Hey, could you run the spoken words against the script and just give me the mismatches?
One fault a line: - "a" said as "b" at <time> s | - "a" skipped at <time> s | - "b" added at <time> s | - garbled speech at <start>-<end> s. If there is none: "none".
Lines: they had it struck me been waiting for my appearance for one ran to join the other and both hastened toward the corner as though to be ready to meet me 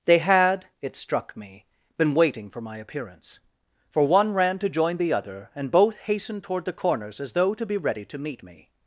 - "corner" said as "corners" at 6.7 s